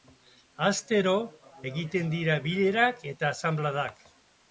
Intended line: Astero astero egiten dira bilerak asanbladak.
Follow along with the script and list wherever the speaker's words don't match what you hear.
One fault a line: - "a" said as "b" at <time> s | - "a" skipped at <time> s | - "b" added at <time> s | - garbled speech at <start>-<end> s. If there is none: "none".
- "astero" skipped at 1.1 s
- "eta" added at 3.1 s